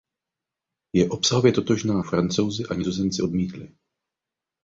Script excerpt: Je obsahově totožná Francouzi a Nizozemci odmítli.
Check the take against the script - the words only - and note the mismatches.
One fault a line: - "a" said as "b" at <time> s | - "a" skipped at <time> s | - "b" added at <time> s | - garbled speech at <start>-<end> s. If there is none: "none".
none